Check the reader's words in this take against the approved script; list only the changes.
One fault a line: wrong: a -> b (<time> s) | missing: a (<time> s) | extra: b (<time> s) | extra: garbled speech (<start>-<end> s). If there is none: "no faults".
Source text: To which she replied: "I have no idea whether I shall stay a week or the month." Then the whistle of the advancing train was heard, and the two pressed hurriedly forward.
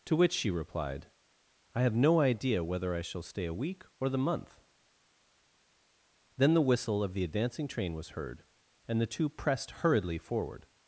no faults